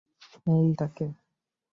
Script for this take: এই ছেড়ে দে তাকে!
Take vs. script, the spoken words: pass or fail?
fail